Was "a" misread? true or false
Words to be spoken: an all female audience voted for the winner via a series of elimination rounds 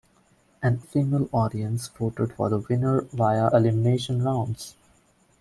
true